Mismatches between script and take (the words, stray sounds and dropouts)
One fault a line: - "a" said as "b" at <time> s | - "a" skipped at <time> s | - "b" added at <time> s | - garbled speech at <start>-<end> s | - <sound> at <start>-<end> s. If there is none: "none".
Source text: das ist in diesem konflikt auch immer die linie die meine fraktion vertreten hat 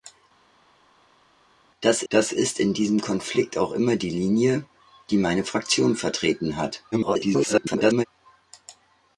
- "das" added at 2.1 s
- garbled speech at 6.9-8.0 s